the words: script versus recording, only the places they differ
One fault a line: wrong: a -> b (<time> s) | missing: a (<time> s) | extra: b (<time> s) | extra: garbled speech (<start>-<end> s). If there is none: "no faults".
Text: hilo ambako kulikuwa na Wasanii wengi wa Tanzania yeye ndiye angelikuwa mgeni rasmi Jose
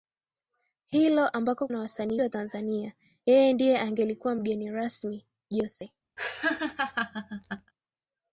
missing: kulikuwa (1.7 s)
missing: wengi (2.2 s)